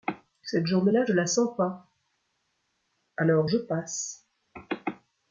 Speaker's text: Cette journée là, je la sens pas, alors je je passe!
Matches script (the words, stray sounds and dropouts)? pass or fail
fail